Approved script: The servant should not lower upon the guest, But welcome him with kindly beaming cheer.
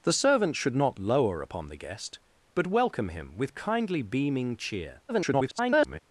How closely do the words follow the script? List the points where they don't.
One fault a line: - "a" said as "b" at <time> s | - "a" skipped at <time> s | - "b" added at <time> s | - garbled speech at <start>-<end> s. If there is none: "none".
- garbled speech at 5.1-6.0 s